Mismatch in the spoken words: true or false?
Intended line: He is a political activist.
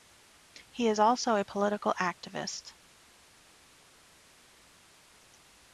true